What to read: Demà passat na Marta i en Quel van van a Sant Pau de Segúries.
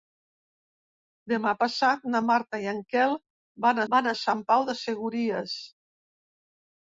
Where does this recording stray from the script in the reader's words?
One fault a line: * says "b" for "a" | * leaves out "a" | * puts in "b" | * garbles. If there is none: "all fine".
all fine